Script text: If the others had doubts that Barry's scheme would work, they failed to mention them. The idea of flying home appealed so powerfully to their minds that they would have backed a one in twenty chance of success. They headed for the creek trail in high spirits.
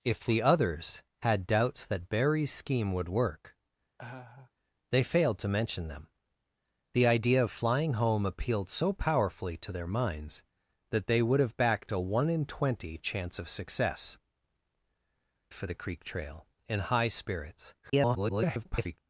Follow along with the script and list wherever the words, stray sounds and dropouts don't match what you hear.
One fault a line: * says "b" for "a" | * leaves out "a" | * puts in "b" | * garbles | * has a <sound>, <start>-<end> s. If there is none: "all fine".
* has a laugh, 4.0-4.5 s
* leaves out "They headed"
* garbles